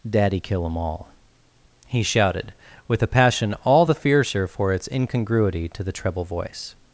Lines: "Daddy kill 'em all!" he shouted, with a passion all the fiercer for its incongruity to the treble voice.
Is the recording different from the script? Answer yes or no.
no